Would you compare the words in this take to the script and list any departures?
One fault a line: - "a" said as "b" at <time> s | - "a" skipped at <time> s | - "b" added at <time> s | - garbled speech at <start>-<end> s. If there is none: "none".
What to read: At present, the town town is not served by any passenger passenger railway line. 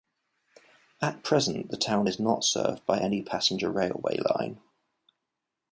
- "town" skipped at 2.1 s
- "passenger" skipped at 3.7 s